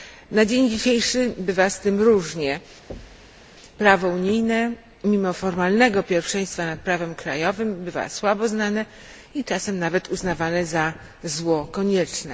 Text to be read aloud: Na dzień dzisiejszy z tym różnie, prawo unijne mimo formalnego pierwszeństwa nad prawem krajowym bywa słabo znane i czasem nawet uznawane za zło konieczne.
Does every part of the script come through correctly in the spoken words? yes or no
no